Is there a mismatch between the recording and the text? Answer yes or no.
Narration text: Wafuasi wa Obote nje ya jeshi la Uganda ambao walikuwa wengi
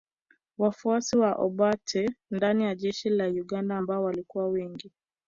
yes